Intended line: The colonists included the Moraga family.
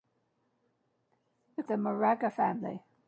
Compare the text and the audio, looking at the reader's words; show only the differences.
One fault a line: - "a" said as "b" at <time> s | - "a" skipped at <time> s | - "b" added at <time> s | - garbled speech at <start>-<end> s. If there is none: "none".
- "colonists included" skipped at 1.6 s